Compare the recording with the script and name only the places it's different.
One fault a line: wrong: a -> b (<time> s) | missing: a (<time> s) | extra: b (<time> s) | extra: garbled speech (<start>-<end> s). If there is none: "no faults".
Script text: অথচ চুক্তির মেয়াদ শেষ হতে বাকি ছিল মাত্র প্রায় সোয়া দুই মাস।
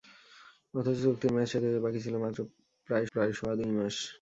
extra: প্রায় (3.1 s)